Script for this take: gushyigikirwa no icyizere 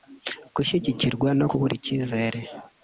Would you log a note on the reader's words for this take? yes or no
yes